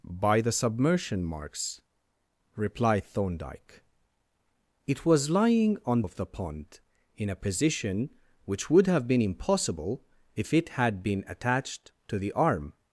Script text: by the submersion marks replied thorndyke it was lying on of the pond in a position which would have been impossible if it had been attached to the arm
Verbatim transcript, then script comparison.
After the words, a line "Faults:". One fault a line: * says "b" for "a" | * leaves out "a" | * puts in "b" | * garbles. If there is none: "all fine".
by the submersion marks replied thorndyke it was lying on of the pond in a position which would have been impossible if it had been attached to the arm
Faults:
all fine